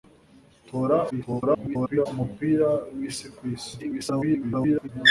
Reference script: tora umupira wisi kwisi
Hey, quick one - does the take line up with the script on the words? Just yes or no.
no